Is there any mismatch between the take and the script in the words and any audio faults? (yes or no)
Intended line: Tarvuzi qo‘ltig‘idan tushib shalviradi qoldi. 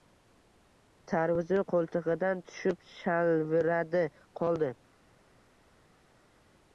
no